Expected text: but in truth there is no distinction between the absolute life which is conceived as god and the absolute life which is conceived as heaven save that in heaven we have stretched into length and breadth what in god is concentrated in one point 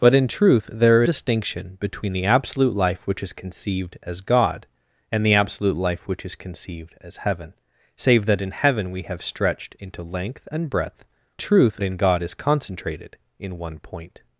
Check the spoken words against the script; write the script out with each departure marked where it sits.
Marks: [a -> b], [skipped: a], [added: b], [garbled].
but in truth there [skipped: is no] distinction between the absolute life which is conceived as god and the absolute life which is conceived as heaven save that in heaven we have stretched into length and breadth [what -> truth] in god is concentrated in one point